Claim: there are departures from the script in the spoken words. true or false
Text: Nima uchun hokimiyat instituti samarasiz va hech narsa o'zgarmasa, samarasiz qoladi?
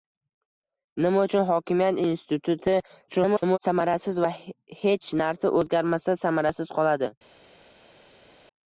true